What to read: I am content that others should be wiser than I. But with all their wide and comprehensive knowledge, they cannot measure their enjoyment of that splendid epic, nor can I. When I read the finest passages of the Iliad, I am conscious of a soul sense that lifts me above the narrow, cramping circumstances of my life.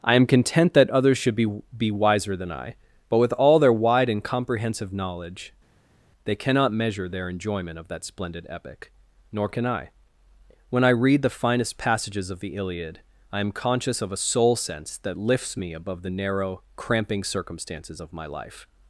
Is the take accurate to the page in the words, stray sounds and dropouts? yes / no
no